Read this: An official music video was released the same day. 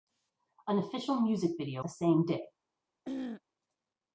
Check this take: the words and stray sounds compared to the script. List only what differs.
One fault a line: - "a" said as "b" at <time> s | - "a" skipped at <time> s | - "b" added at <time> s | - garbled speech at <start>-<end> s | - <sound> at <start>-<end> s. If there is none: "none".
- "was released" skipped at 1.9 s
- throat clearing at 3.0-3.4 s